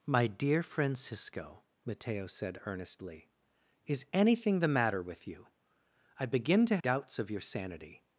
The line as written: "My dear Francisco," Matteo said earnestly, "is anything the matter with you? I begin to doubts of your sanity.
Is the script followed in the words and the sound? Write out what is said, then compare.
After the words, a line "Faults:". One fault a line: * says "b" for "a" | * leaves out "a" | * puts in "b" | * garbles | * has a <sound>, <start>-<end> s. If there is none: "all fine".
"My dear Francisco," Matteo said earnestly, "is anything the matter with you? I begin to doubts of your sanity.
Faults:
all fine